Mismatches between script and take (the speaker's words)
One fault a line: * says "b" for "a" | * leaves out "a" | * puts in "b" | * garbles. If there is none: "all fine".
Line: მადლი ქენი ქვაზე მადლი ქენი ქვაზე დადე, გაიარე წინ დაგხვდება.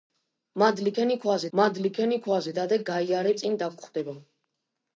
all fine